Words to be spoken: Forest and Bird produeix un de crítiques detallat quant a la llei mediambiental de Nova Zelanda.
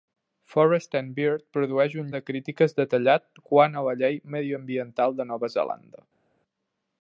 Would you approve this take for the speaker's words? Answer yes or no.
yes